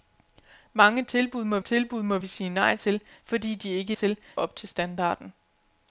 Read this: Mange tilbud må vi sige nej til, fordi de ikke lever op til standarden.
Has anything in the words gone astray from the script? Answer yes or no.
yes